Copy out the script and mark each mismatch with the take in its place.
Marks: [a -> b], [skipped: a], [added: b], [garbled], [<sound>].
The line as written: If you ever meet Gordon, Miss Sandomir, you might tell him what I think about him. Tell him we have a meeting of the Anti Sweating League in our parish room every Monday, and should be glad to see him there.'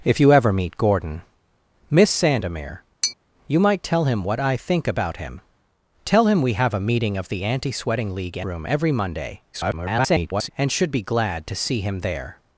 If you ever meet Gordon, Miss Sandomir, [tap] you might tell him what I think about him. Tell him we have a meeting of the Anti Sweating League in [skipped: our parish] room every Monday, [garbled] and should be glad to see him there.'